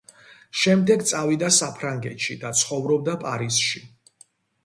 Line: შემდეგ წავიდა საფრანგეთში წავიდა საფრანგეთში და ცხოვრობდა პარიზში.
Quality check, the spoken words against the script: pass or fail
fail